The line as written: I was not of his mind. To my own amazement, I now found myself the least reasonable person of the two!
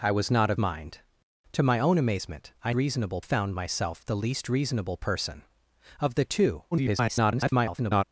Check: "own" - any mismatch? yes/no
no